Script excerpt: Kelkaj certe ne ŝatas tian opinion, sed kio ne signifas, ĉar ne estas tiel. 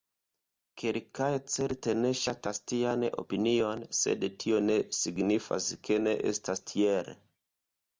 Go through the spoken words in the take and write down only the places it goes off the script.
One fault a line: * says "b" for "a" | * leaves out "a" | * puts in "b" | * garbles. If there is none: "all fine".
* says "tio" for "kio"
* says "ke" for "ĉar"